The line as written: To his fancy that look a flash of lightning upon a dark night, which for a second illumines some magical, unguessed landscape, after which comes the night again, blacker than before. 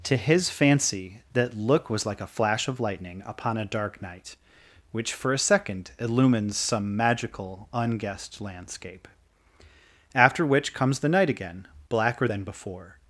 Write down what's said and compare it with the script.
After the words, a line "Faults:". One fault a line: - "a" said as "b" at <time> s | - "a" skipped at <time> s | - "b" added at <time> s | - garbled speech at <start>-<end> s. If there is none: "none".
To his fancy that look was like a flash of lightning upon a dark night, which for a second illumines some magical, unguessed landscape, after which comes the night again, blacker than before.
Faults:
- "was like" added at 1.9 s